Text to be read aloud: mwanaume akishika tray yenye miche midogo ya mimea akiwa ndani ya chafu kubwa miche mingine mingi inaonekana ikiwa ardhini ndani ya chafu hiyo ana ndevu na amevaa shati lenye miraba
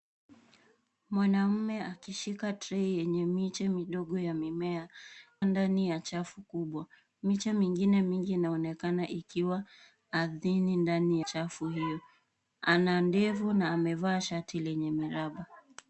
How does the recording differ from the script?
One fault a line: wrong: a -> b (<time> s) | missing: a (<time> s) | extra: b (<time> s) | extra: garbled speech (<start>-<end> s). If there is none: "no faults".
missing: akiwa (4.9 s)
missing: ya (11.2 s)